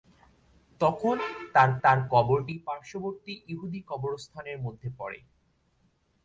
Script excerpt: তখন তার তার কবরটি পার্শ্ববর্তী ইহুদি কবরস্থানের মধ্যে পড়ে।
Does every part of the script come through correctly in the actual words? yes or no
yes